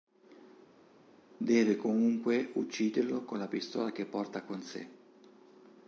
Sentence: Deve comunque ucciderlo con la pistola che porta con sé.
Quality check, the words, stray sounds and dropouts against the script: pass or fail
pass